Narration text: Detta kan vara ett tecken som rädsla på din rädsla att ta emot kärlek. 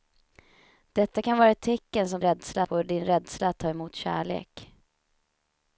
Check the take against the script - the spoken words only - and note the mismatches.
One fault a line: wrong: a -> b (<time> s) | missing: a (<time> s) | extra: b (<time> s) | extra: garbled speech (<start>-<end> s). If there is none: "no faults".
no faults